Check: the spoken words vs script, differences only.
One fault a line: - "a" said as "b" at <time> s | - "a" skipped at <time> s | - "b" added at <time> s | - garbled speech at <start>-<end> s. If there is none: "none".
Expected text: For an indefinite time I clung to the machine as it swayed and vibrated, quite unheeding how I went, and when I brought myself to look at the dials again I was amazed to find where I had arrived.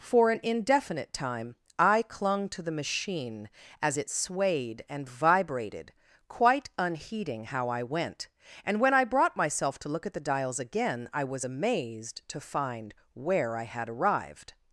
none